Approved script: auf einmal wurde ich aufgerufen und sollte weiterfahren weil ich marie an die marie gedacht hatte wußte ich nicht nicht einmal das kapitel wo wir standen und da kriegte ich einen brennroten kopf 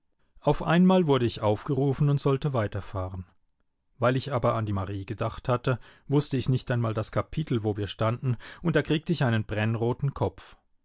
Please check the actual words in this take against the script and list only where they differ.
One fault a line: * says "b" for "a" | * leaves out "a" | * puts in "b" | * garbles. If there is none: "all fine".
* says "aber" for "marie"
* leaves out "nicht"